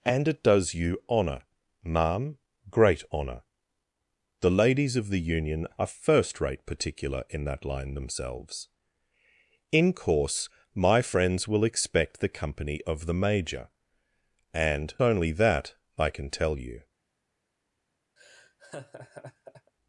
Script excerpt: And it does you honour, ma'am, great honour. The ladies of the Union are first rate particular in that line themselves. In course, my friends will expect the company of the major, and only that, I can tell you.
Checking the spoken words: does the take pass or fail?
pass